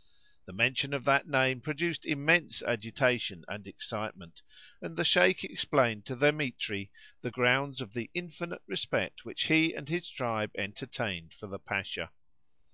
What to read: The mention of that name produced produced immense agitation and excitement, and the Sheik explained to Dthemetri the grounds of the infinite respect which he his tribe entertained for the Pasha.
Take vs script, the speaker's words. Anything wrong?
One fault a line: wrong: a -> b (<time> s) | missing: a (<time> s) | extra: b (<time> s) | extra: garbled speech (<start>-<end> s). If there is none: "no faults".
missing: produced (2.1 s)
extra: and (9.7 s)